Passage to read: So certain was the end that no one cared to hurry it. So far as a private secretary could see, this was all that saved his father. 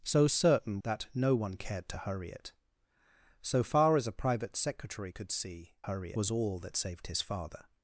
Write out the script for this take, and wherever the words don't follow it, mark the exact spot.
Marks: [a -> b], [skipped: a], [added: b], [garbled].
So certain [skipped: was the end] that no one cared to hurry it. So far as a private secretary could see, [this -> hurry] was all that saved his father.